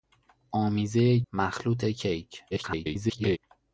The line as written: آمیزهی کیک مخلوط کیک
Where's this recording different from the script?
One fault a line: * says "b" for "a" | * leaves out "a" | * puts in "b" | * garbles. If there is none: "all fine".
* leaves out "کیک"
* garbles